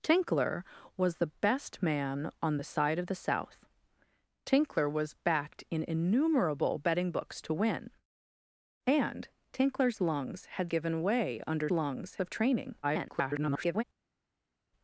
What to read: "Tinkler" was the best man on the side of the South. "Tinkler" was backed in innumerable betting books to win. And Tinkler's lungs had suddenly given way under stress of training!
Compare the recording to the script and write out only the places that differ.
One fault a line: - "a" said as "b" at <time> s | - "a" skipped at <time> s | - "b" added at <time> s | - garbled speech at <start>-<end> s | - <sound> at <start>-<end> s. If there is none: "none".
- "suddenly" skipped at 10.7 s
- "stress" said as "lungs" at 11.7 s
- garbled speech at 12.8-13.8 s